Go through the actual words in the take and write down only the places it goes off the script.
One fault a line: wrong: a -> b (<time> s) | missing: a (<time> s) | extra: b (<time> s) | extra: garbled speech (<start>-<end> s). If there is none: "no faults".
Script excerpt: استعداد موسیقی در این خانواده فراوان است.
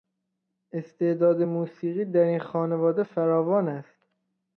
no faults